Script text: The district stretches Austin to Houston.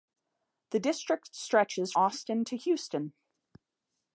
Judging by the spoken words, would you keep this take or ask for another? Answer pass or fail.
pass